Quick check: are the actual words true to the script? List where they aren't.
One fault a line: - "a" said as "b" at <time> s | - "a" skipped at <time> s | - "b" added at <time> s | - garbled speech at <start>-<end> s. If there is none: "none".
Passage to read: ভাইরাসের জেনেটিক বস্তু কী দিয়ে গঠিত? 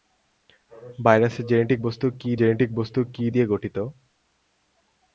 - "জেনেটিক বস্তু কী" added at 2.3 s